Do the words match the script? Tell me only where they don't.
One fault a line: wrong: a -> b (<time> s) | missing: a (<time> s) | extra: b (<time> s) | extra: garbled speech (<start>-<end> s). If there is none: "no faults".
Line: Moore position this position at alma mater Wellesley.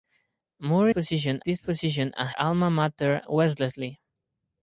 no faults